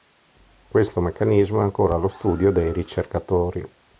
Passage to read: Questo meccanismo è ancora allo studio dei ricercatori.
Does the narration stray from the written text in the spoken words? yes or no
no